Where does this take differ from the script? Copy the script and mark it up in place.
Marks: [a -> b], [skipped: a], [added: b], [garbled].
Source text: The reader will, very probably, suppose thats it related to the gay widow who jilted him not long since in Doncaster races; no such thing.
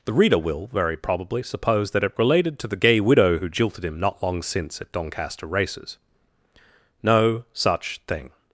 The reader will, very probably, suppose [thats -> that] it related to the gay widow who jilted him not long since [in -> at] Doncaster races; no such thing.